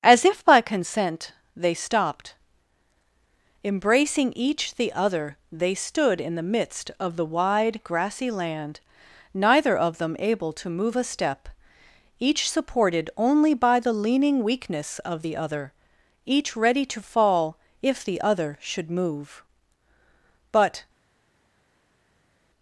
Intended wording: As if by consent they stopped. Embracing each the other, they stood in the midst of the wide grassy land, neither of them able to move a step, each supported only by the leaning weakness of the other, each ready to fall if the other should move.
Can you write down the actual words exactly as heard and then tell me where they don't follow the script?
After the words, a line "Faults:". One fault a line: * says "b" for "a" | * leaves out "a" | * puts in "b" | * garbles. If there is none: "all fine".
As if by consent they stopped. Embracing each the other, they stood in the midst of the wide grassy land, neither of them able to move a step, each supported only by the leaning weakness of the other, each ready to fall if the other should move. But
Faults:
* puts in "But"